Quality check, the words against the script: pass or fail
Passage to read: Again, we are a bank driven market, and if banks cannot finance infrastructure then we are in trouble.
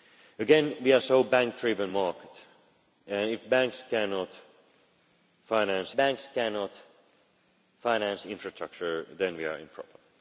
fail